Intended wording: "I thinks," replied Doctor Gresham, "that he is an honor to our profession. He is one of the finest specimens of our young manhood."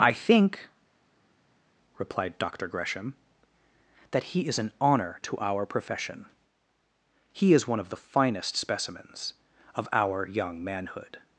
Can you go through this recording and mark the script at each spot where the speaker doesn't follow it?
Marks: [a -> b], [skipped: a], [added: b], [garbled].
"I [thinks," -> think] replied Doctor Gresham, "that he is an honor to our profession. He is one of the finest specimens of our young manhood."